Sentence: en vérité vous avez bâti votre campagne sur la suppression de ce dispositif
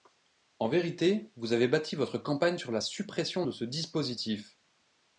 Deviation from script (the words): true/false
false